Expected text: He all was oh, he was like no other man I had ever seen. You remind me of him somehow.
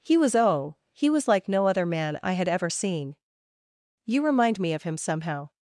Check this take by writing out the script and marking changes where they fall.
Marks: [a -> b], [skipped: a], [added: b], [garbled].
He [skipped: all] was oh, he was like no other man I had ever seen. You remind me of him somehow.